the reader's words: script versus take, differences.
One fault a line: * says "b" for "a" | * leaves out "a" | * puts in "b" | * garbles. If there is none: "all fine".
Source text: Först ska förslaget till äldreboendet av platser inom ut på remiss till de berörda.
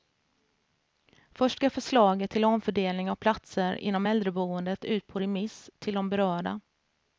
* says "omfördelning" for "äldreboendet"
* puts in "äldreboendet"